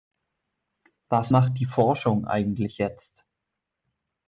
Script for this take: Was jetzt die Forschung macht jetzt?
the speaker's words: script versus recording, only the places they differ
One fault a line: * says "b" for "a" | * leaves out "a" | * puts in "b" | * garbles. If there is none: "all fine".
* says "macht" for "jetzt"
* says "eigentlich" for "macht"